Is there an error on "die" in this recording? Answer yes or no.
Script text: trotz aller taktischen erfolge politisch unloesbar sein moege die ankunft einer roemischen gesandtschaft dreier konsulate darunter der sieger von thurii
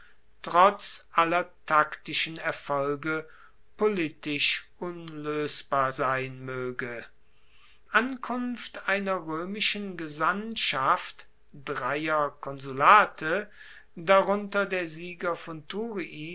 yes